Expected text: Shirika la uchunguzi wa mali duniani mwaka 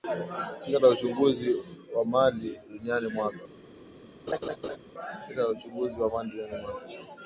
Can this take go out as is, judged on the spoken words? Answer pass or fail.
pass